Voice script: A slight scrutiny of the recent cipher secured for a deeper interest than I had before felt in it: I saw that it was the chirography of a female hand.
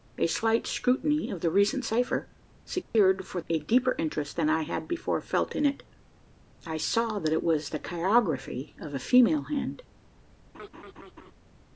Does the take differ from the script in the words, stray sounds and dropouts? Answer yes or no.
yes